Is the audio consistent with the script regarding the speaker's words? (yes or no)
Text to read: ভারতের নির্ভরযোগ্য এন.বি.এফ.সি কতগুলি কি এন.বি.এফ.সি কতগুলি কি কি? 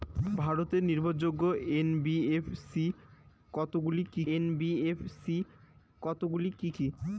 yes